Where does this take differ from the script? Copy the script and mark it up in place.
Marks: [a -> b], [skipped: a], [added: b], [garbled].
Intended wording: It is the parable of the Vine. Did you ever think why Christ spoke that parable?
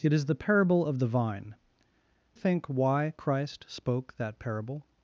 It is the parable of the Vine. [skipped: Did you ever] think why Christ spoke that parable?